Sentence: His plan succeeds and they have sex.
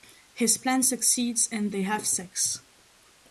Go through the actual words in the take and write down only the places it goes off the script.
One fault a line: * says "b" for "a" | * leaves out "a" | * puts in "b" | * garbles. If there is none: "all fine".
all fine